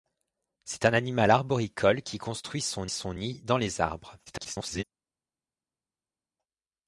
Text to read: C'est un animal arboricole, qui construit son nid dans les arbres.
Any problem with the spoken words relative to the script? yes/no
yes